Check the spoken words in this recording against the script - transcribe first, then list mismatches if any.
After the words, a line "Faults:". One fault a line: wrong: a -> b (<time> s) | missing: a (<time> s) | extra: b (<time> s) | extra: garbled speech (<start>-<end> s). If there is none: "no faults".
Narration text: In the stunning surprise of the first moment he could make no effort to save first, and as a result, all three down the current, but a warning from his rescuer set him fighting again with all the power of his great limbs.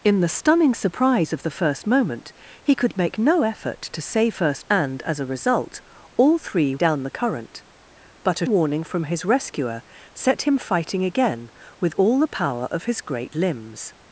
In the stunning surprise of the first moment he could make no effort to save first, and as a result, all three down the current, but a warning from his rescuer set him fighting again with all the power of his great limbs.
Faults:
no faults